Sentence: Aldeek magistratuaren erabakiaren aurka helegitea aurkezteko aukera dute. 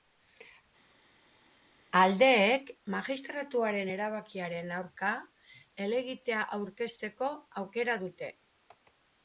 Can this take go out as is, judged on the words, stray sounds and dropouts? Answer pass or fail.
pass